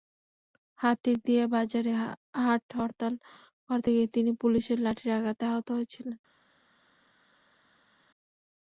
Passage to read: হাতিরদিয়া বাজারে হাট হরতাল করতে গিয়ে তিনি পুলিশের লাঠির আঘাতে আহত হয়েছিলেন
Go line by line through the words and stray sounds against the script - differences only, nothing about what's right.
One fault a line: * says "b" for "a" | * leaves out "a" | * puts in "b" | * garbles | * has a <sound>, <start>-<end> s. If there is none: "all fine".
all fine